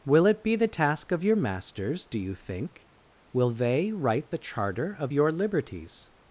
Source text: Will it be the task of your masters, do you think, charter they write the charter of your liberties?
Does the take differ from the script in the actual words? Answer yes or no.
yes